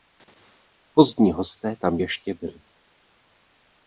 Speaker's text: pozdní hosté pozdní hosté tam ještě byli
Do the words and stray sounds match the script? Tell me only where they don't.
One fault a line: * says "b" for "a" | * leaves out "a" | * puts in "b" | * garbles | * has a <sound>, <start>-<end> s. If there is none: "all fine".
* leaves out "pozdní hosté"